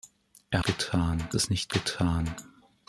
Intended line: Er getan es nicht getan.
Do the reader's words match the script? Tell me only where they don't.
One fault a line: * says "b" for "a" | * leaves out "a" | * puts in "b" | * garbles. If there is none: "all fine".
all fine